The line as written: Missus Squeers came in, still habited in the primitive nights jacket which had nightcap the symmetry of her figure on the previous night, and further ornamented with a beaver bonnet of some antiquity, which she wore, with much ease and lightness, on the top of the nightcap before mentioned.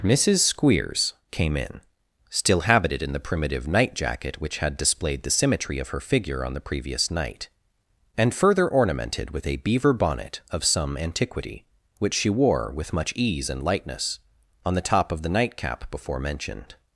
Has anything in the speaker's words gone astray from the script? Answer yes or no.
yes